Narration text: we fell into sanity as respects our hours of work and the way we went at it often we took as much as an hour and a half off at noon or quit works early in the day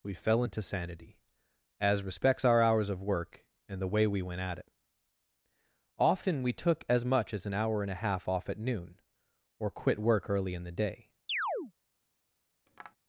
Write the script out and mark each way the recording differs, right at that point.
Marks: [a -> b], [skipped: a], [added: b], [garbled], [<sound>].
we fell into sanity as respects our hours of work and the way we went at it often we took as much as an hour and a half off at noon or quit [works -> work] early in the day [chirp] [tap]